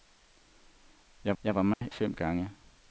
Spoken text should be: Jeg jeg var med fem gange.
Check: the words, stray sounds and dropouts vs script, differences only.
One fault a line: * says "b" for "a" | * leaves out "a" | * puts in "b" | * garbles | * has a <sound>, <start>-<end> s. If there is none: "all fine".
* has a dropout, 1.7-1.8 s